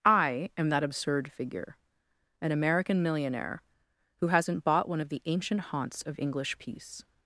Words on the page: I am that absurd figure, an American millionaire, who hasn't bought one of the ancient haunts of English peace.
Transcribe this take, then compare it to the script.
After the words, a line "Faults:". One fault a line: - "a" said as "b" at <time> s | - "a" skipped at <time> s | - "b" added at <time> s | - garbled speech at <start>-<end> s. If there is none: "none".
I am that absurd figure, an American millionaire, who hasn't bought one of the ancient haunts of English peace.
Faults:
none